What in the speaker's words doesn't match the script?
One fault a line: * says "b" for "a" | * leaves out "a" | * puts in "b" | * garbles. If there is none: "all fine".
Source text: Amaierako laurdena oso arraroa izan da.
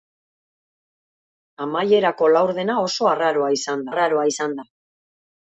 * puts in "arraroa izan"